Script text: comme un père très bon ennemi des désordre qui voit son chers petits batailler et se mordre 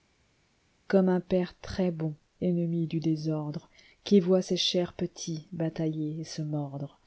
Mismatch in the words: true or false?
true